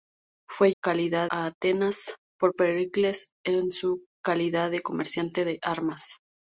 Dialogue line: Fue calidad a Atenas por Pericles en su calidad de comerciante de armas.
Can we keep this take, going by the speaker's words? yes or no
yes